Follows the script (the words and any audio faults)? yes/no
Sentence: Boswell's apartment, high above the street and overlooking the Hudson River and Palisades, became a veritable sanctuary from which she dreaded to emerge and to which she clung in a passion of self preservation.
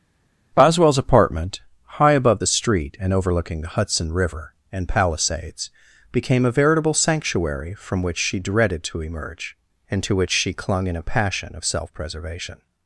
yes